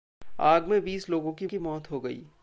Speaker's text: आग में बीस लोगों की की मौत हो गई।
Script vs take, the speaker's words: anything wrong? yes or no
no